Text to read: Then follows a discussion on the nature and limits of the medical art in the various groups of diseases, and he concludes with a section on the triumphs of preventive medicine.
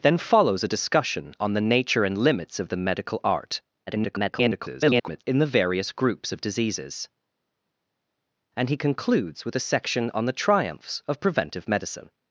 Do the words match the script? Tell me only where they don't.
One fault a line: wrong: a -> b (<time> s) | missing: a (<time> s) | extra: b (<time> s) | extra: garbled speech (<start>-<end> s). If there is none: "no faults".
extra: garbled speech (3.9-5.2 s)